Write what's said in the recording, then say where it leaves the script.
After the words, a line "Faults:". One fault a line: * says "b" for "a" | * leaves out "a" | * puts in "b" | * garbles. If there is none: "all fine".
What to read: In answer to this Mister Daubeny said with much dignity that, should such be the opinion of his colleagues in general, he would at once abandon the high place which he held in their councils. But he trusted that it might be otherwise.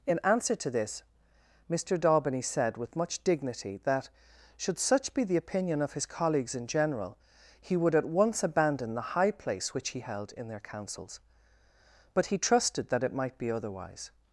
In answer to this Mister Daubeny said with much dignity that, should such be the opinion of his colleagues in general, he would at once abandon the high place which he held in their councils. But he trusted that it might be otherwise.
Faults:
all fine